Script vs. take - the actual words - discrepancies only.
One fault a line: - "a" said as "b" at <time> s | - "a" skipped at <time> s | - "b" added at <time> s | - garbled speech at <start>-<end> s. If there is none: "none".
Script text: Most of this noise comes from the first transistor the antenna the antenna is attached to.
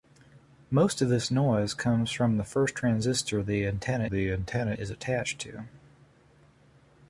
none